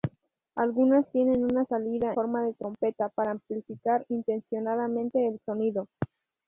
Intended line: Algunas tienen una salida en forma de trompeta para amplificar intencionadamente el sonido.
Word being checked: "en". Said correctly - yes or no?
no